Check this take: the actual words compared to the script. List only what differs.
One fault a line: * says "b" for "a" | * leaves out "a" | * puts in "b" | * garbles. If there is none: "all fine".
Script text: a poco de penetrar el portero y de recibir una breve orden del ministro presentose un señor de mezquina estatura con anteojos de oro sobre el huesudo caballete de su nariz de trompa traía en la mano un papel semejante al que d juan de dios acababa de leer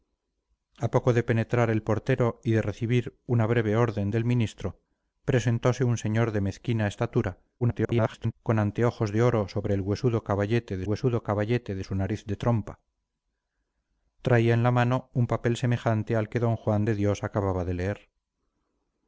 * garbles
* puts in "huesudo caballete de"